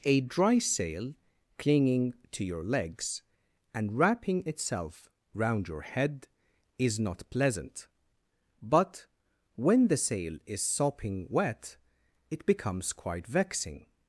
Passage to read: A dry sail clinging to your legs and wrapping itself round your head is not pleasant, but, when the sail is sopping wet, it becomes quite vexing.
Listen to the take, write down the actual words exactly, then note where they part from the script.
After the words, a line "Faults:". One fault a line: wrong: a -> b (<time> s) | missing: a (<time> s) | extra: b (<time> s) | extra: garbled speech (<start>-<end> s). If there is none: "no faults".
A dry sail clinging to your legs and wrapping itself round your head is not pleasant, but, when the sail is sopping wet, it becomes quite vexing.
Faults:
no faults